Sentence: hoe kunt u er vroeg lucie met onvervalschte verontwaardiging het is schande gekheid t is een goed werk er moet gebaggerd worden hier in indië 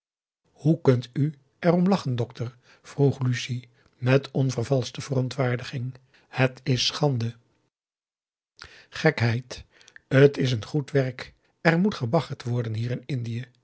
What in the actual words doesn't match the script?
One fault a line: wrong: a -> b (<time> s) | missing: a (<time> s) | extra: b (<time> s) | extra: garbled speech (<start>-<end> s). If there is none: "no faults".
extra: om lachen dokter (1.7 s)